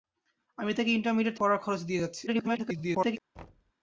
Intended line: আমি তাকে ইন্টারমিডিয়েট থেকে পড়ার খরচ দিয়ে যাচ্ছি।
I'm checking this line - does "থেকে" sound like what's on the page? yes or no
no